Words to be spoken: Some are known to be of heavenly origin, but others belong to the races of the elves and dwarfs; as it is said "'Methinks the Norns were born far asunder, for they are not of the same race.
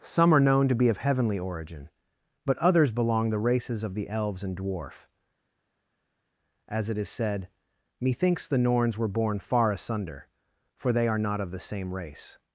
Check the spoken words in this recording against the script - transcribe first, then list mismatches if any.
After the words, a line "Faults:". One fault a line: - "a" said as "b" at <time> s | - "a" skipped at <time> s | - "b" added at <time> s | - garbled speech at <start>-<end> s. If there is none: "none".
Some are known to be of heavenly origin, but others belong the races of the elves and dwarf; as it is said "'Methinks the Norns were born far asunder, for they are not of the same race.
Faults:
- "to" skipped at 3.3 s
- "dwarfs" said as "dwarf" at 4.6 s